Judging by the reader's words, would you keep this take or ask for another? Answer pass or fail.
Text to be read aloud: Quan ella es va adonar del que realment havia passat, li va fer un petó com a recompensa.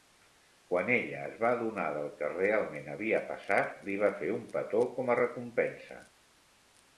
pass